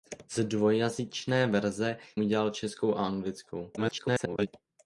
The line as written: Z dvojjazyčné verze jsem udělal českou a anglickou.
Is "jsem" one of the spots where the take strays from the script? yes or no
yes